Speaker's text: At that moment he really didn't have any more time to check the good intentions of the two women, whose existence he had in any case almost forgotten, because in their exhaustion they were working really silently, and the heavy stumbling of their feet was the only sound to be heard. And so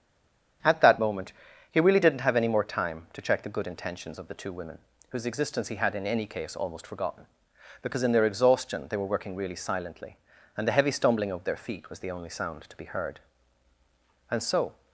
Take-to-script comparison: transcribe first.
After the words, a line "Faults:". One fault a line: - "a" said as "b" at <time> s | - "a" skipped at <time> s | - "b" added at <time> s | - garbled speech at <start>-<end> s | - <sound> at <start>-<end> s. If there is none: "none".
At that moment he really didn't have any more time to check the good intentions of the two women, whose existence he had in any case almost forgotten, because in their exhaustion they were working really silently, and the heavy stumbling of their feet was the only sound to be heard. And so
Faults:
none